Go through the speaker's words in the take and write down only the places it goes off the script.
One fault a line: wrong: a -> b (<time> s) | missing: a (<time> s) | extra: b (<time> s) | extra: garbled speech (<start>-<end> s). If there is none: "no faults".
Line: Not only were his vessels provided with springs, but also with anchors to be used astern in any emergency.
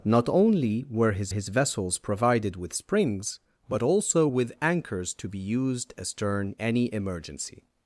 extra: his (1.3 s)
missing: in (6.5 s)